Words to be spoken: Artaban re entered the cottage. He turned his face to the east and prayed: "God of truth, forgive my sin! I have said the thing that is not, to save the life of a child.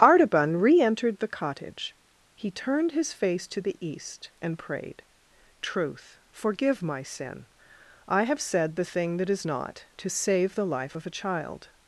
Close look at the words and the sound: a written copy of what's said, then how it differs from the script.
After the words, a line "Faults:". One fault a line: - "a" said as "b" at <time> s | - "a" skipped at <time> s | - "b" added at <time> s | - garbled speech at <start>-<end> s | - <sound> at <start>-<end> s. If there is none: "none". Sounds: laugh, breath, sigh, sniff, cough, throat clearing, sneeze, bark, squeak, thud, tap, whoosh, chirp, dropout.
Artaban re entered the cottage. He turned his face to the east and prayed: "truth, forgive my sin! I have said the thing that is not, to save the life of a child.
Faults:
- "God of" skipped at 5.0 s